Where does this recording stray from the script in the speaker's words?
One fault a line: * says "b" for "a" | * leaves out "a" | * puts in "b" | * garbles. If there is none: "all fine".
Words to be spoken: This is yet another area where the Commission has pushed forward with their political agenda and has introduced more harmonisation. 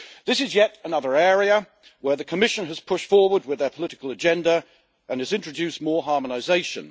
all fine